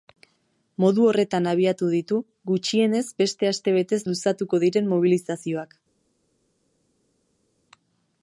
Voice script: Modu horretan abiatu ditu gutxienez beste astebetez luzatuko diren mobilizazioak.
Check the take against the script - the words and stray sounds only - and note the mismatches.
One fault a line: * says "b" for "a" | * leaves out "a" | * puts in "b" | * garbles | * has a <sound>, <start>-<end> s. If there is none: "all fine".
all fine